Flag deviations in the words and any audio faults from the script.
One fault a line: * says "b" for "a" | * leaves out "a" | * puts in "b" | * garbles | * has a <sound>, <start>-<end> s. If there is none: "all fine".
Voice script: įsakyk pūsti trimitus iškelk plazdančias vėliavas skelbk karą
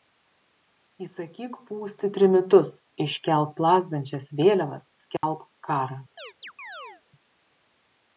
* has a dropout, 5.2-5.2 s
* has a chirp, 6.2-7.0 s